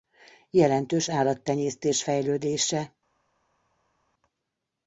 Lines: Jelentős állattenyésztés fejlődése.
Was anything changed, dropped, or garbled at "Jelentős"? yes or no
no